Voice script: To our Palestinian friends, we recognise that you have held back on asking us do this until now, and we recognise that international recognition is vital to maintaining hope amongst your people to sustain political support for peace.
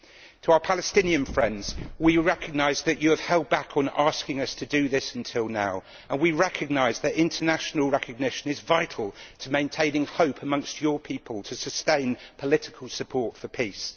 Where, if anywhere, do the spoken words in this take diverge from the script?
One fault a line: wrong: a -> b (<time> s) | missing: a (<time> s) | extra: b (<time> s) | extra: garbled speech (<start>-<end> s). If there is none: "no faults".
extra: to (4.5 s)